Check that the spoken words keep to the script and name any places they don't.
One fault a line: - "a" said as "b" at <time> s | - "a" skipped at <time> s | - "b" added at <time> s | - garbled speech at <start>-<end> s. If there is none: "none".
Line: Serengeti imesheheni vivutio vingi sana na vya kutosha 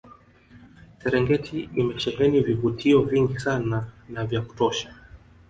none